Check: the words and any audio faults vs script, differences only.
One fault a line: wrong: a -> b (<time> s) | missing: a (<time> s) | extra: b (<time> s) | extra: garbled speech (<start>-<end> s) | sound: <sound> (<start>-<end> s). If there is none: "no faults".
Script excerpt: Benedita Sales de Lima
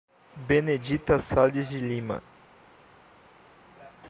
no faults